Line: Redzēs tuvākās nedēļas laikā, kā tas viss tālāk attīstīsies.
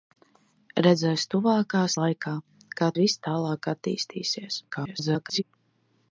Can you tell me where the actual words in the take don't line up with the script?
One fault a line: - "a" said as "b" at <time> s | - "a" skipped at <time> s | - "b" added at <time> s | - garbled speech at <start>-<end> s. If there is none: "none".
- "nedēļas" skipped at 2.0 s
- "tas" skipped at 2.9 s
- garbled speech at 4.7-5.4 s